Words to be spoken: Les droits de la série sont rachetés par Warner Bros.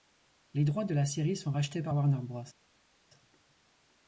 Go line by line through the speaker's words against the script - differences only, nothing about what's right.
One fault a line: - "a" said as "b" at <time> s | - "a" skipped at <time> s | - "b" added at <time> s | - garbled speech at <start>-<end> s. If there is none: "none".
none